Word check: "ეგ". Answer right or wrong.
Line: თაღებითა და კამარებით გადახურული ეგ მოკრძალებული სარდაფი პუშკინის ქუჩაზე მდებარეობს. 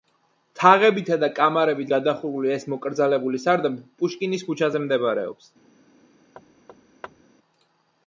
wrong